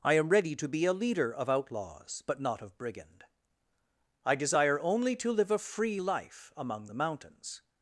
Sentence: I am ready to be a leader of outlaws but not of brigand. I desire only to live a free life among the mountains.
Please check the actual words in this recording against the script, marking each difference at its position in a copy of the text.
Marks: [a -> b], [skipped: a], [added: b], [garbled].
I am ready to be a leader of outlaws but not of brigand. I desire only to live a free life among the mountains.